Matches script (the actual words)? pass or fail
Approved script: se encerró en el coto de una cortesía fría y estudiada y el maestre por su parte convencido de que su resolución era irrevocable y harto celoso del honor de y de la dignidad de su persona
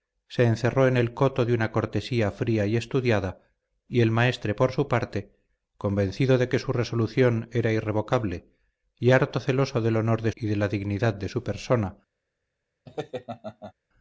pass